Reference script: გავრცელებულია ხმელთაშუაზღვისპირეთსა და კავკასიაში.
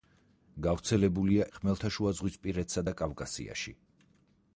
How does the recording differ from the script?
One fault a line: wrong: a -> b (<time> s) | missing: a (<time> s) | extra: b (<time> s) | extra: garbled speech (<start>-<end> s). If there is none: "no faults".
no faults